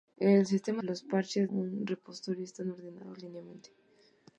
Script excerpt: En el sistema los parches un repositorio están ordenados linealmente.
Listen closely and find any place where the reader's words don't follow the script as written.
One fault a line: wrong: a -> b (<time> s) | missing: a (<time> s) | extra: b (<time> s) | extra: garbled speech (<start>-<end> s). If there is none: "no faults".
no faults